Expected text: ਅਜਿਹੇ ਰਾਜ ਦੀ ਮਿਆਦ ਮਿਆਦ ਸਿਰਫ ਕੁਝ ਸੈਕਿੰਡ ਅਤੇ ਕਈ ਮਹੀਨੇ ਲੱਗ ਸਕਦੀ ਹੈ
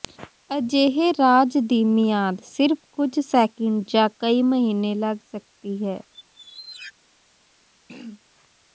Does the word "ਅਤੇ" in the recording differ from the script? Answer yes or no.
yes